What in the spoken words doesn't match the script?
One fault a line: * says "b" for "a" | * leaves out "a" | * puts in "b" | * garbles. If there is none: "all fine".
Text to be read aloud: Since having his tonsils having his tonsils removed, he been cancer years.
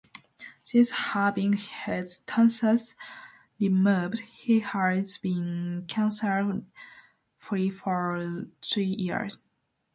* leaves out "having his tonsils"
* puts in "has"
* puts in "free for three"